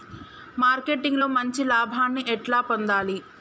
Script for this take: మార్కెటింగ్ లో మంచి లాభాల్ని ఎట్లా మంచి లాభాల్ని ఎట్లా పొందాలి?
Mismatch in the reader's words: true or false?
true